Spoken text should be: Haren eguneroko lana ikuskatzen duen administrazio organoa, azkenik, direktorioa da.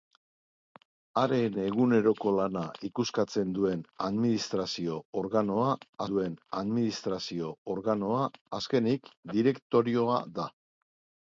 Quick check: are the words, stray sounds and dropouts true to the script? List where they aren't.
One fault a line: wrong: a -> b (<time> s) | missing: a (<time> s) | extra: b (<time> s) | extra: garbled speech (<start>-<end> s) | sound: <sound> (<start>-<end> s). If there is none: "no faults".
extra: duen administrazio organoa (6.1 s)